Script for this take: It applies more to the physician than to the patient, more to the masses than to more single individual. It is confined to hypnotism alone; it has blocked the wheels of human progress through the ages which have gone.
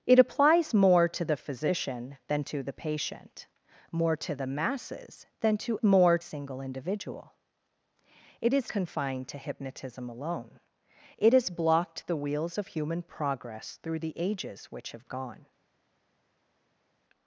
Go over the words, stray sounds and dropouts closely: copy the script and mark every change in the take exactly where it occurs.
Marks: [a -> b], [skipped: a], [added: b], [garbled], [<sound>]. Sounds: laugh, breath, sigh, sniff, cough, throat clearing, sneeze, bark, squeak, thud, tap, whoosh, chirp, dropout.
It applies more to the physician than to the patient, more to the masses than to more single individual. It is confined to hypnotism alone; it has blocked the wheels of human progress through the ages which have gone.